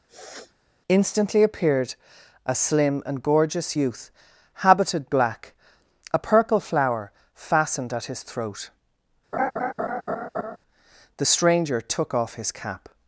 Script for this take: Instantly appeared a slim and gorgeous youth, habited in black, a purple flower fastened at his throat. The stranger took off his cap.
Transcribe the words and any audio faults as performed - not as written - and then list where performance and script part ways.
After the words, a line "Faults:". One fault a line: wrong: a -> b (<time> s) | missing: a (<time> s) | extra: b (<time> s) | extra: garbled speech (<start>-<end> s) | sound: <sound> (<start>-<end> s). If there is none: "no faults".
Instantly appeared a slim and gorgeous youth, habited black, a purple flower fastened at his throat. The stranger took off his cap.
Faults:
sound: sniff (0.1-0.5 s)
missing: in (5.1 s)
sound: laugh (9.3-10.6 s)